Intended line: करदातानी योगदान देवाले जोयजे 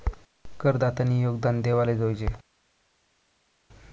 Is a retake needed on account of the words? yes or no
no